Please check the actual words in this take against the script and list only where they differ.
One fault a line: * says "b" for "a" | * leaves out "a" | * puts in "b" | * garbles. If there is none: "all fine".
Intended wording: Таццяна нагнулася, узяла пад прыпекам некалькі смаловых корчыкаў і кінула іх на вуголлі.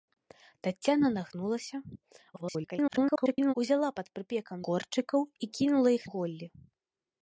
* garbles
* leaves out "некалькі смаловых"
* leaves out "на"